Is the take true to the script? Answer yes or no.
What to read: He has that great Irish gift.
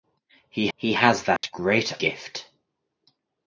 no